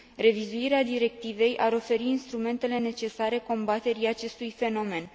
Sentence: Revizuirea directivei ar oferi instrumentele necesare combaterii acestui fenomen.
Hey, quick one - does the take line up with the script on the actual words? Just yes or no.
yes